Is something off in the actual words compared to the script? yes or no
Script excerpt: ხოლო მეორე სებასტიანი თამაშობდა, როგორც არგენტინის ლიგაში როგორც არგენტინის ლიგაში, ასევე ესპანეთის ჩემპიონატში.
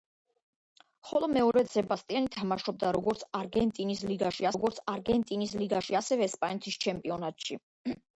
no